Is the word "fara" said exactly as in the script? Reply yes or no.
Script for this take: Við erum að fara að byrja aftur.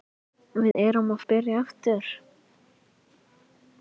no